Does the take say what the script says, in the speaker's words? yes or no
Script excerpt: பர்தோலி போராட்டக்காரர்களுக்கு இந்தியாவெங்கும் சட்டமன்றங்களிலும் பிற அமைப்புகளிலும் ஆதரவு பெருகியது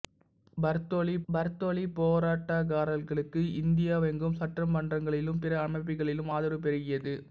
no